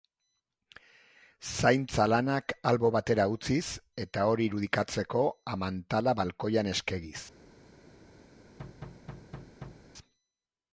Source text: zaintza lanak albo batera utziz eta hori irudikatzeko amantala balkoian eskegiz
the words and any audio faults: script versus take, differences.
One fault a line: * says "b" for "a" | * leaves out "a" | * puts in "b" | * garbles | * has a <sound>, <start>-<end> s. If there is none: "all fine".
* has a thud, 8.6-9.9 s